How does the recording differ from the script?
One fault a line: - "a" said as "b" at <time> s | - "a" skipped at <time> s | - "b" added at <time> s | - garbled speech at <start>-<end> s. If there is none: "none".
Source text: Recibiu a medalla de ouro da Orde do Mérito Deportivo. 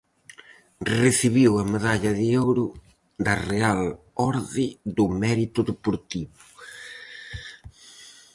- "Real" added at 3.5 s